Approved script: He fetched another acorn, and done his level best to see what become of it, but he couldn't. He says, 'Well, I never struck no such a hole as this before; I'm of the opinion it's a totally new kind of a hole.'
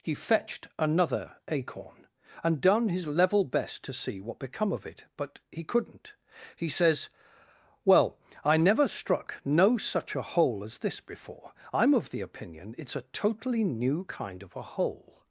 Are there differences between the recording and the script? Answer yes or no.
no